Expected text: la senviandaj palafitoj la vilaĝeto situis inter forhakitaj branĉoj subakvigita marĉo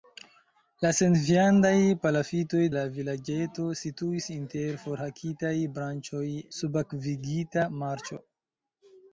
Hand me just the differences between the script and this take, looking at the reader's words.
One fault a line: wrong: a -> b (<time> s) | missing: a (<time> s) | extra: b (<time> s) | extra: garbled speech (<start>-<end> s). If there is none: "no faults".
no faults